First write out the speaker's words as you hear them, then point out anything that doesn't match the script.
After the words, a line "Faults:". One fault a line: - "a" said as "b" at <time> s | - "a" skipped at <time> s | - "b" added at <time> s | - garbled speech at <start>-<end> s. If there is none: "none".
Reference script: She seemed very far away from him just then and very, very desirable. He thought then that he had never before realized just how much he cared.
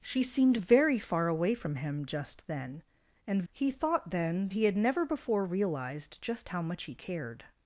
She seemed very far away from him just then and. He thought then he had never before realized just how much he cared.
Faults:
- "very very desirable" skipped at 3.4 s
- "that" skipped at 4.5 s